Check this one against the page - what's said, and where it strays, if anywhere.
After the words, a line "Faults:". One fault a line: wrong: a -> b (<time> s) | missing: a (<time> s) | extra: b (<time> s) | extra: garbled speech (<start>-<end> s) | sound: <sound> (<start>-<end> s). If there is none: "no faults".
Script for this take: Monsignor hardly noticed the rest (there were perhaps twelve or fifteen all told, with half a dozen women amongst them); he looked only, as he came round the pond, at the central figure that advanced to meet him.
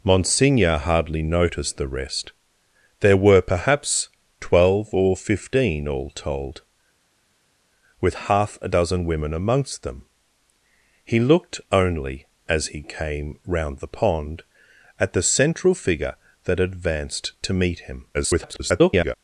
Monsignor hardly noticed the rest (there were perhaps twelve or fifteen all told, with half a dozen women amongst them); he looked only, as he came round the pond, at the central figure that advanced to meet him. [garbled]
Faults:
extra: garbled speech (18.1-19.1 s)